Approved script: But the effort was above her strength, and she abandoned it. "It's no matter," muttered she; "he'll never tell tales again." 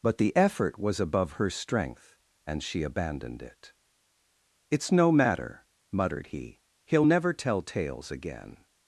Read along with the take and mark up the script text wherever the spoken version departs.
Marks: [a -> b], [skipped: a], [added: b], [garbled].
But the effort was above her strength, and she abandoned it. "It's no matter," muttered [she; -> he] "he'll never tell tales again."